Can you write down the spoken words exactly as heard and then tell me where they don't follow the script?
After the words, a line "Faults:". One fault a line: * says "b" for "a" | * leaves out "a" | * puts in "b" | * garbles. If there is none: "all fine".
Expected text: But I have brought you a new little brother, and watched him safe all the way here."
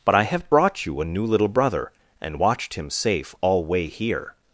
But I have brought you a new little brother, and watched him safe all way here."
Faults:
* leaves out "the"